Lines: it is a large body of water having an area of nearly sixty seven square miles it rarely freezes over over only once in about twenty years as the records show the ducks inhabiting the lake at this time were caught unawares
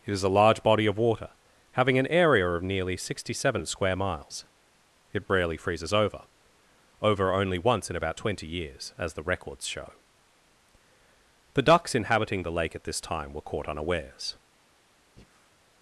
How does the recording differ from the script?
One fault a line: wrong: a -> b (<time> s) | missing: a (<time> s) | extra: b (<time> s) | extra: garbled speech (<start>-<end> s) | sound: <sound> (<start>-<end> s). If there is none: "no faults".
sound: breath (15.2-15.6 s)